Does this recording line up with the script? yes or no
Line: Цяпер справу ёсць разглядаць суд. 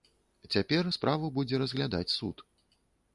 no